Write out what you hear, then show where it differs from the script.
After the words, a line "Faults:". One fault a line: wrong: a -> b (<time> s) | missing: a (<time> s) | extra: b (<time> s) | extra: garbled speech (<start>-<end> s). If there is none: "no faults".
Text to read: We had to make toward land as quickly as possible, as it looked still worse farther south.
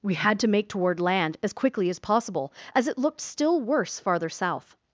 We had to make toward land as quickly as possible, as it looked still worse farther south.
Faults:
no faults